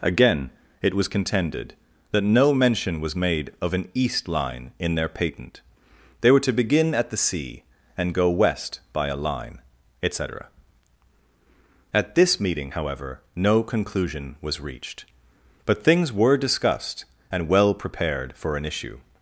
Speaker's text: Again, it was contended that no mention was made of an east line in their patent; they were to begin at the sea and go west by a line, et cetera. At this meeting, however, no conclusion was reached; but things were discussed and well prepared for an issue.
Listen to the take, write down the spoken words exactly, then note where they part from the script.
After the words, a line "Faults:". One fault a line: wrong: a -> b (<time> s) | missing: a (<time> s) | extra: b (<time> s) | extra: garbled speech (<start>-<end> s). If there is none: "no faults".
Again, it was contended that no mention was made of an east line in their patent; they were to begin at the sea and go west by a line, et cetera. At this meeting, however, no conclusion was reached; but things were discussed and well prepared for an issue.
Faults:
no faults